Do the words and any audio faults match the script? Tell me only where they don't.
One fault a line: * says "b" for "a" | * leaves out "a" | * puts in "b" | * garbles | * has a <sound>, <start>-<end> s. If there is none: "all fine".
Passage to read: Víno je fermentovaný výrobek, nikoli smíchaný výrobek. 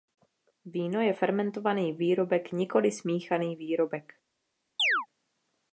* has a chirp, 4.8-5.1 s